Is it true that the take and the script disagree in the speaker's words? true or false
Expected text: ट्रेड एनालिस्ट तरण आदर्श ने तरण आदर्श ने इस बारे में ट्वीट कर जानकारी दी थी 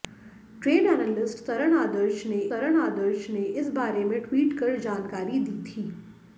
false